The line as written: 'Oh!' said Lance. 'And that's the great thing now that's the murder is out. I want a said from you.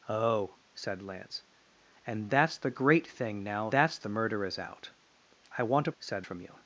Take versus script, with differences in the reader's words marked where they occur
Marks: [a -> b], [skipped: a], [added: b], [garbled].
'Oh!' said Lance. 'And that's the great thing now that's the murder is out. I want a said from you.